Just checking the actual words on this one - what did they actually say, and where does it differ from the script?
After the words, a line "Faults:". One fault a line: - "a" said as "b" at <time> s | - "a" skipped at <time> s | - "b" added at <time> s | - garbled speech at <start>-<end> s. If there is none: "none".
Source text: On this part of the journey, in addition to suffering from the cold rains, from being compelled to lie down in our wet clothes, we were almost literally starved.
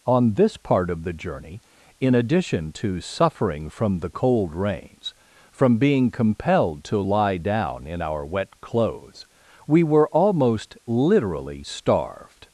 On this part of the journey, in addition to suffering from the cold rains, from being compelled to lie down in our wet clothes, we were almost literally starved.
Faults:
none